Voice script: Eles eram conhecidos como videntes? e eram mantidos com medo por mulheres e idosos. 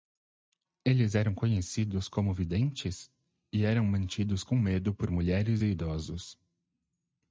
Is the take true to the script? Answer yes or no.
yes